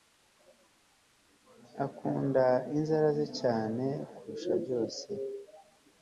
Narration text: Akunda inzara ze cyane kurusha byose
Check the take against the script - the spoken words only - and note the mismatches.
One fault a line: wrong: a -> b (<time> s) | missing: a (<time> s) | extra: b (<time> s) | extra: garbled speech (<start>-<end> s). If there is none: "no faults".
no faults